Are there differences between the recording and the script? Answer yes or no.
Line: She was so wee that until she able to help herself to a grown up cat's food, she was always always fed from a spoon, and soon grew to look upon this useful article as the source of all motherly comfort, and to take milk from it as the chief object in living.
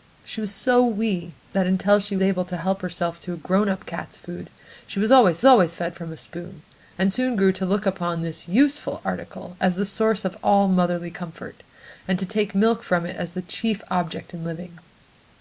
no